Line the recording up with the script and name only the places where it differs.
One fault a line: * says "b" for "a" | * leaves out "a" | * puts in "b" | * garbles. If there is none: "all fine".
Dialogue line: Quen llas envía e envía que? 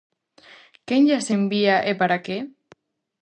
* says "para" for "envía"